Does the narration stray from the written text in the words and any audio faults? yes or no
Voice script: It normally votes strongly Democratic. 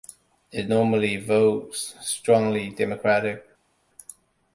no